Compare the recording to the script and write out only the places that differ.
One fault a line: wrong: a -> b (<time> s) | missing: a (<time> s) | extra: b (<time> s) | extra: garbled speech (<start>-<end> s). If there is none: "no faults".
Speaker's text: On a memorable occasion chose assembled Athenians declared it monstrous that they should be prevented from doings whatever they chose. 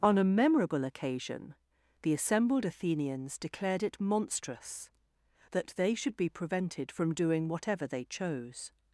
wrong: chose -> the (2.0 s)
wrong: doings -> doing (7.1 s)